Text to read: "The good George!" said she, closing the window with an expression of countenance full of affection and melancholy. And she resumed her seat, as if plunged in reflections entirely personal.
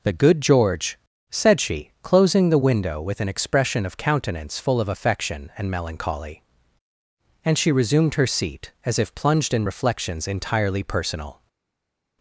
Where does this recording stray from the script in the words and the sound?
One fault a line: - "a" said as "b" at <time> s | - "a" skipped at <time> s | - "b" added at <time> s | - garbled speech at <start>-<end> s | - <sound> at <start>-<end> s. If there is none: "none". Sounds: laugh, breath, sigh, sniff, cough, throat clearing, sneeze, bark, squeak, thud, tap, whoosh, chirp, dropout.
none